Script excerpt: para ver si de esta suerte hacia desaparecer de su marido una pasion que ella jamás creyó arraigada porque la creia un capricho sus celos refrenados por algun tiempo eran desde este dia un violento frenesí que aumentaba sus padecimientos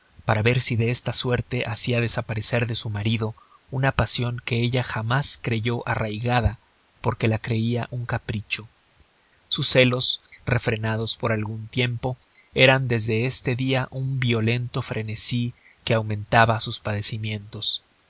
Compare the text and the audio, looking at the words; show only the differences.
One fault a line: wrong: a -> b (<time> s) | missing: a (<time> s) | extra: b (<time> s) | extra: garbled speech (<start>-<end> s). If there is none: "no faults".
no faults